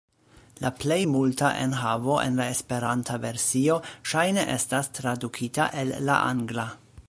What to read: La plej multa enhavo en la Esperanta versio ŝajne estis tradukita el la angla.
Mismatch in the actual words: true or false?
true